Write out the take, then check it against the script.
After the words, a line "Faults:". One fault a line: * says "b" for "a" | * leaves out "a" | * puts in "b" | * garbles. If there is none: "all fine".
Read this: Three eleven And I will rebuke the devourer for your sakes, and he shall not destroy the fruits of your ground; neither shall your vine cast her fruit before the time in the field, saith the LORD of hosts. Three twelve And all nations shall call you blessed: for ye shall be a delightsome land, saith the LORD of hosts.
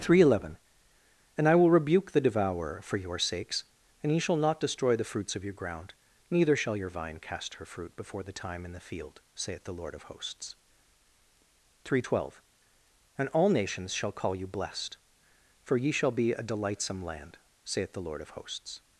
Three eleven And I will rebuke the devourer for your sakes, and he shall not destroy the fruits of your ground; neither shall your vine cast her fruit before the time in the field, saith the LORD of hosts. Three twelve And all nations shall call you blessed: for ye shall be a delightsome land, saith the LORD of hosts.
Faults:
all fine